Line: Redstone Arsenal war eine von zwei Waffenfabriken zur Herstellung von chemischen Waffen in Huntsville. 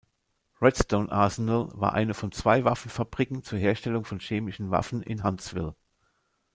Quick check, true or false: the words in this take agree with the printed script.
true